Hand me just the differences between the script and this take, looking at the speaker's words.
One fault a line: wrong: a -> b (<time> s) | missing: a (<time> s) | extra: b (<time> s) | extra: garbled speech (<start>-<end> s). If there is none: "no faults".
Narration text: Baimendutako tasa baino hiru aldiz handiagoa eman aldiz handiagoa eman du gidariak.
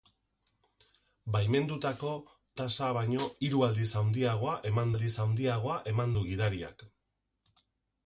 no faults